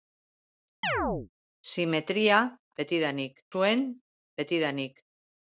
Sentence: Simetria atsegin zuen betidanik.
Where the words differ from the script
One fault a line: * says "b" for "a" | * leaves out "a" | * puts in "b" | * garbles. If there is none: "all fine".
* says "betidanik" for "atsegin"